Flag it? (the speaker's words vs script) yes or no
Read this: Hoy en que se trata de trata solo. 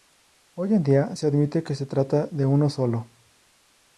yes